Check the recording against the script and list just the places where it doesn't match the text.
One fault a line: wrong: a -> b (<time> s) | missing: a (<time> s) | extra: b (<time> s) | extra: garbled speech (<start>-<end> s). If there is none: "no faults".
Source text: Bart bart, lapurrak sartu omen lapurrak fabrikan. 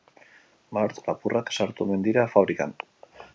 missing: bart (1.0 s)
wrong: lapurrak -> dira (2.1 s)